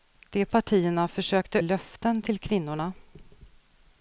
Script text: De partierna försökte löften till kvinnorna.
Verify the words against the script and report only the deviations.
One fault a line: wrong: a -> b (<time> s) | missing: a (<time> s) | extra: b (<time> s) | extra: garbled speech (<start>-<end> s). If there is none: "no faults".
no faults